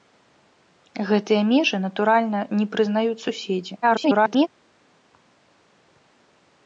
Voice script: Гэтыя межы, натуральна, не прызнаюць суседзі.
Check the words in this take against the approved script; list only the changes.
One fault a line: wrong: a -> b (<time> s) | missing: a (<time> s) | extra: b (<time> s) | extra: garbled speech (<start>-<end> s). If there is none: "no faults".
extra: garbled speech (3.8-4.5 s)